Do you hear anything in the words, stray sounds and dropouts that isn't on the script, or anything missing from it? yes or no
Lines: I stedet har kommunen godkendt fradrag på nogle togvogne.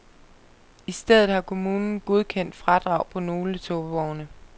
no